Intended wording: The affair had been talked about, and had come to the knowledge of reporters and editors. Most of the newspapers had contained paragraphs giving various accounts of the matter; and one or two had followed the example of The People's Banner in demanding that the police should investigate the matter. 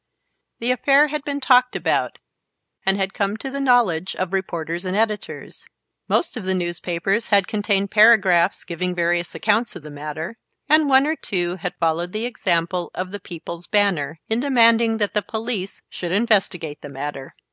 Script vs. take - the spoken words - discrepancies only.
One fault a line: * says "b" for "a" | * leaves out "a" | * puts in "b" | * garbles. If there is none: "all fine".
all fine